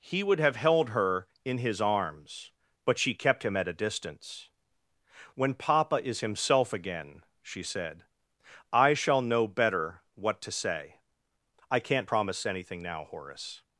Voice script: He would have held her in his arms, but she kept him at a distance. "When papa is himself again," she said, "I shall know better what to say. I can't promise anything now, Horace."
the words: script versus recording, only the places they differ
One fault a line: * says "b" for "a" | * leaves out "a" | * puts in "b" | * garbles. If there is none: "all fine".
all fine